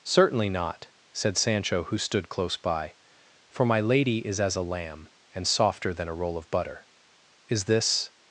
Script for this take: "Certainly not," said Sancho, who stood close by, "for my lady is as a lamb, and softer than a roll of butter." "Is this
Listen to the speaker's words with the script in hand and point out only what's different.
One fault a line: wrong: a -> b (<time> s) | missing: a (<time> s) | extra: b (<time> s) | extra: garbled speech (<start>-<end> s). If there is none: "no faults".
no faults